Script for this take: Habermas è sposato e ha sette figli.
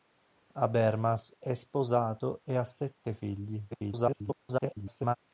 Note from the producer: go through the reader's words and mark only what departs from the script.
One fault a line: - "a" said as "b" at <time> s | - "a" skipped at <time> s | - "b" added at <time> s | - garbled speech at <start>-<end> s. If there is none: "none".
- garbled speech at 3.7-5.2 s